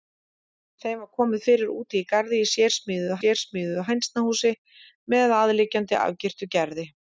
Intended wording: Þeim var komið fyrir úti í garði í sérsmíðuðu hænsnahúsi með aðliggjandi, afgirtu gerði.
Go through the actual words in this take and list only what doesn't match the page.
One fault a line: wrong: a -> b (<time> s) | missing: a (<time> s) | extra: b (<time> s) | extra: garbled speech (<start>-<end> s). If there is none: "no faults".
extra: sérsmíðuðu (3.2 s)